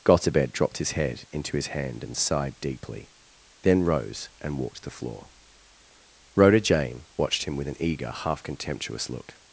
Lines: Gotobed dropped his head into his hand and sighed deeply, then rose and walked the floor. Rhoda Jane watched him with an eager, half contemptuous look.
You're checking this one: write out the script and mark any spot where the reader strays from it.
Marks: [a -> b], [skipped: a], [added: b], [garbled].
Gotobed dropped his head into his hand and sighed deeply, then rose and walked the floor. Rhoda Jane watched him with an eager, half contemptuous look.